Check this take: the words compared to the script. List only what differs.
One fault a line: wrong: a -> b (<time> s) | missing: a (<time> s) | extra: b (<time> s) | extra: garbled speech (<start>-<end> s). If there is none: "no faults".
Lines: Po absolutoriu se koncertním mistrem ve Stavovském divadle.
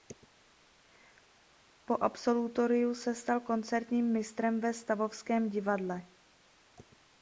extra: stal (3.1 s)